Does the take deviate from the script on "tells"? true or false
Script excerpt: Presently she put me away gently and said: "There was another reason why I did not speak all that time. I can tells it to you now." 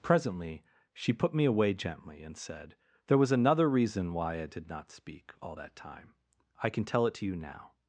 true